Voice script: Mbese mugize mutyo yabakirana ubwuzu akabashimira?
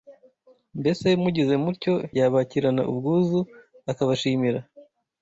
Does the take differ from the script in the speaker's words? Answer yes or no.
no